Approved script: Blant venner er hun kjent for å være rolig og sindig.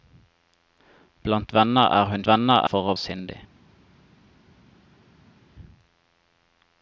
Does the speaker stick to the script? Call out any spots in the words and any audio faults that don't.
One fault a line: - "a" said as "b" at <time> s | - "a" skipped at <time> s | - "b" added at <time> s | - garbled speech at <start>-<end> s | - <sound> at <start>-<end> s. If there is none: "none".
- "kjent" said as "venner" at 2.3 s
- "være rolig og" skipped at 3.0 s